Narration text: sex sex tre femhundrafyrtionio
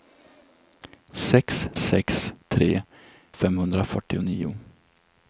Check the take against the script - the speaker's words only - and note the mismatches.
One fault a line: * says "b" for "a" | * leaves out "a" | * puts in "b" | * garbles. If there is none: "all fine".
all fine